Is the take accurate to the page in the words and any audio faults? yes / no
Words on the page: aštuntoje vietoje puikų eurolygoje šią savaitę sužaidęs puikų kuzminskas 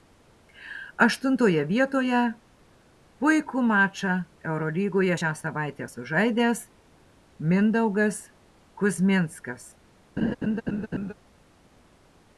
no